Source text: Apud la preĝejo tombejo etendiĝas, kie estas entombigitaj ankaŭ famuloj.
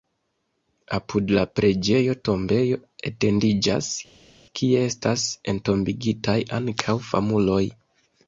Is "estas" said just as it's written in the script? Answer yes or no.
yes